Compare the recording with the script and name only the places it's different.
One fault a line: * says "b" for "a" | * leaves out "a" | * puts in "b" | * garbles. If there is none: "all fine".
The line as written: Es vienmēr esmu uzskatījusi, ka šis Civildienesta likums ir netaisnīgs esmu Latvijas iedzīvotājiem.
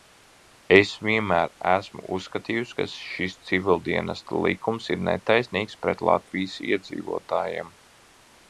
* says "pret" for "esmu"